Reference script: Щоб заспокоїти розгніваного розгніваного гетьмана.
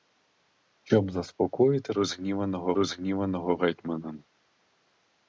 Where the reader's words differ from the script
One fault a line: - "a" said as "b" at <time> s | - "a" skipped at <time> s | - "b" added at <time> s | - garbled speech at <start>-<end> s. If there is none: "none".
none